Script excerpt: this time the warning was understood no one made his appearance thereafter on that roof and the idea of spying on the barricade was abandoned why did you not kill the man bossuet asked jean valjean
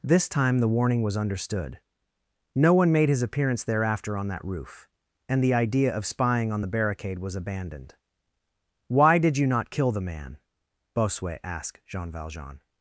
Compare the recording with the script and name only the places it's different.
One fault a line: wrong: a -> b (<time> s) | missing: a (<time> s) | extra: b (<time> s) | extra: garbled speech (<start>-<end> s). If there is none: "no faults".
no faults